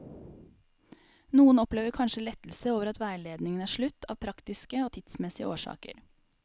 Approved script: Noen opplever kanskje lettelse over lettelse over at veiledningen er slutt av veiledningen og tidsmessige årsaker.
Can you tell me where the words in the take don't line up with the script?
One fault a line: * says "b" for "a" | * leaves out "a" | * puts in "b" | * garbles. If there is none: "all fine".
* leaves out "lettelse over"
* says "praktiske" for "veiledningen"